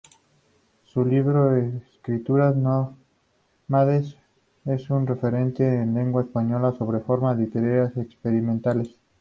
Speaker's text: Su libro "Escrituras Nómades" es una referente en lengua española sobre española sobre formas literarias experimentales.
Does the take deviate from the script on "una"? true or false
true